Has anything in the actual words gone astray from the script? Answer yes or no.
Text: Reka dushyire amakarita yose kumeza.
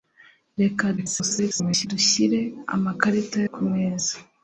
yes